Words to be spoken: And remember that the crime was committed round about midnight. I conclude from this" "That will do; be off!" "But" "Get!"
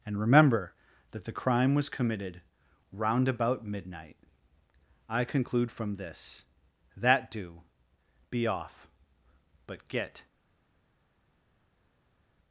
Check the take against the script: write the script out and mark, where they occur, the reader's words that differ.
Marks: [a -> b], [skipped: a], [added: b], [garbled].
And remember that the crime was committed round about midnight. I conclude from this" "That [skipped: will] do; be off!" "But" "Get!"